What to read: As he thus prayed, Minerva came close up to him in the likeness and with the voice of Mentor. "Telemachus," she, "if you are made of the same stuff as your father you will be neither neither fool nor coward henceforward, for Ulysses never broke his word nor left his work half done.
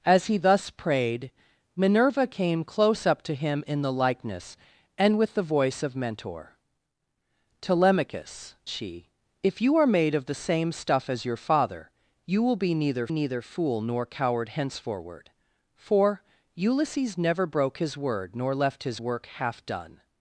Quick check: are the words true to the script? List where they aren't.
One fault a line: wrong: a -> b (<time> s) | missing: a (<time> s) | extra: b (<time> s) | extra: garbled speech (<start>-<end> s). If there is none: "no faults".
no faults